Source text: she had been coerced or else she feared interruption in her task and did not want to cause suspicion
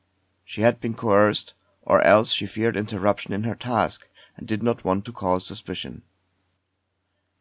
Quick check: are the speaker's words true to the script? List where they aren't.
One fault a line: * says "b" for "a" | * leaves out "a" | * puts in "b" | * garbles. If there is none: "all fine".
all fine